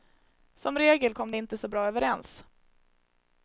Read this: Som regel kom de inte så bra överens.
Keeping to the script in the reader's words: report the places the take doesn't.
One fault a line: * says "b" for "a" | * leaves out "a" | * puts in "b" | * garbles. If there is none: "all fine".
all fine